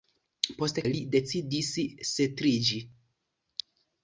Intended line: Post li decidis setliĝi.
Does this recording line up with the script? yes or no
yes